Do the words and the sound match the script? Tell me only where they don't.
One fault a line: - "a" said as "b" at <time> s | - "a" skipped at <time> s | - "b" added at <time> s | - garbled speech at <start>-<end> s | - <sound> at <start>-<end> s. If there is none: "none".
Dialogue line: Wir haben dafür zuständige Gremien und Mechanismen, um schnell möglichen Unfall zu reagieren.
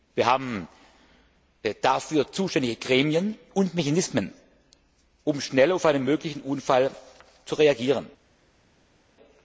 - "auf einen" added at 5.7 s